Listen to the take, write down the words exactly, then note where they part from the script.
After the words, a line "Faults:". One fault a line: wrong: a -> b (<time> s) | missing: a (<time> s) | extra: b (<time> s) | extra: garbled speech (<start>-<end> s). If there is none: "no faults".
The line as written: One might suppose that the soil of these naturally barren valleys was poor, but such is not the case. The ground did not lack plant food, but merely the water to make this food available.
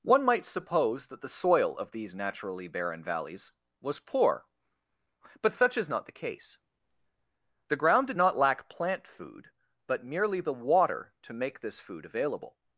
One might suppose that the soil of these naturally barren valleys was poor, but such is not the case. The ground did not lack plant food, but merely the water to make this food available.
Faults:
no faults